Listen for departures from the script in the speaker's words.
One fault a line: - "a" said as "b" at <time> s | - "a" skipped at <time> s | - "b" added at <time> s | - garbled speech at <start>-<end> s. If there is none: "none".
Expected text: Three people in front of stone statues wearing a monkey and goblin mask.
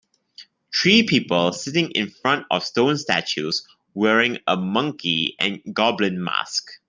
- "sitting" added at 1.5 s